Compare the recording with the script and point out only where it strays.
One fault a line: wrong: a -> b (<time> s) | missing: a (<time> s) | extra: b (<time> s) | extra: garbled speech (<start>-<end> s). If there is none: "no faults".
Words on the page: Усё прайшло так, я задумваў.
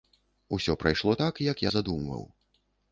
extra: як (1.5 s)